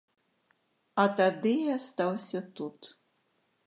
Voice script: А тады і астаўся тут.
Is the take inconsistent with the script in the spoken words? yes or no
no